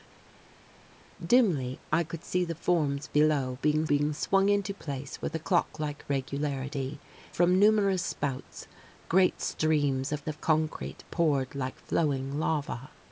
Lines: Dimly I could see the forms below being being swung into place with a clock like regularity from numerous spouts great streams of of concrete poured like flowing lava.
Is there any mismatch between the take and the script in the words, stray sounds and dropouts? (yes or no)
no